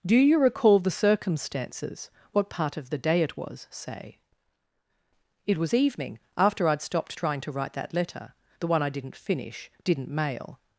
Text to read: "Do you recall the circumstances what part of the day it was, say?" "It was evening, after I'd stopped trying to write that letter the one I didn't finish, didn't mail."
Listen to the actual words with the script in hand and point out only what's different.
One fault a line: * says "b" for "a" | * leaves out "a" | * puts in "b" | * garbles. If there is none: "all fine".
all fine